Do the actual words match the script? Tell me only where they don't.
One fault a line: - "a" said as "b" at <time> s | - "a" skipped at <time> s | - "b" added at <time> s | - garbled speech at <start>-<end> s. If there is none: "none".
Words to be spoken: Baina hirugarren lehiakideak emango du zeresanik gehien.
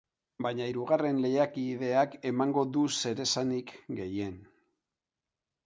none